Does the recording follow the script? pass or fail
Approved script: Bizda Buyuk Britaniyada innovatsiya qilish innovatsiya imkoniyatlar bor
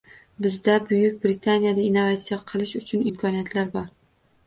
fail